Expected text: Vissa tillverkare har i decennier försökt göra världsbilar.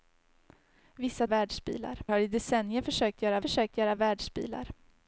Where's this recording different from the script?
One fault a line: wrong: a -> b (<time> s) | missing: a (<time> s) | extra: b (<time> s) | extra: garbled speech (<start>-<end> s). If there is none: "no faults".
wrong: tillverkare -> världsbilar (1.2 s)
extra: försökt göra (3.4 s)